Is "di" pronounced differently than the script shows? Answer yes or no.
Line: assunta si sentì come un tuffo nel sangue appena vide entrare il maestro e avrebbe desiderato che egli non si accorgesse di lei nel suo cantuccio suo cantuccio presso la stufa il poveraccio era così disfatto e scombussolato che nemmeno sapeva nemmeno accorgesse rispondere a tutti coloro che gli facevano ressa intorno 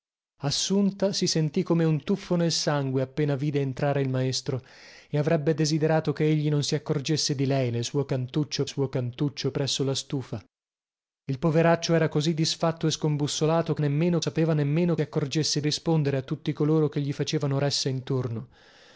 no